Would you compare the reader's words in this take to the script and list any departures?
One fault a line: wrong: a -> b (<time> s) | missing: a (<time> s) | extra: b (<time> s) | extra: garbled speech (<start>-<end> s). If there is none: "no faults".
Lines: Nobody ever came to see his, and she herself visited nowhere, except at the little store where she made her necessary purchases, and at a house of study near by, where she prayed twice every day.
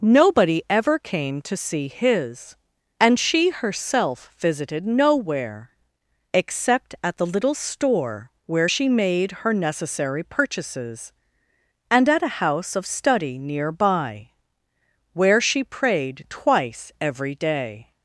no faults